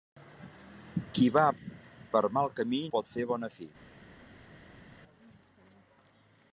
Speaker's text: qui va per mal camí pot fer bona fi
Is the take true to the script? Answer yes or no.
yes